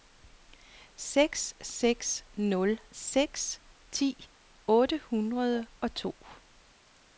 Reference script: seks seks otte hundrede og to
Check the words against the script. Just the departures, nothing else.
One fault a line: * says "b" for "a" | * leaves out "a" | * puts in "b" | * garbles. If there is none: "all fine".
* puts in "nul seks ti"